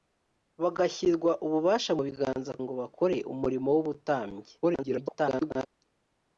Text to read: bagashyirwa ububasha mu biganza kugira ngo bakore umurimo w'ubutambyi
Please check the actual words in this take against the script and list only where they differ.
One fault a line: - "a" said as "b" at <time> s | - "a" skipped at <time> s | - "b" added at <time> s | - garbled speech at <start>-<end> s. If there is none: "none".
- "kugira" skipped at 2.5 s
- garbled speech at 4.6-5.7 s